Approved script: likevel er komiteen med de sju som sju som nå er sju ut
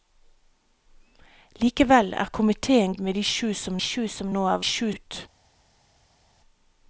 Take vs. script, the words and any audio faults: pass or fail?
pass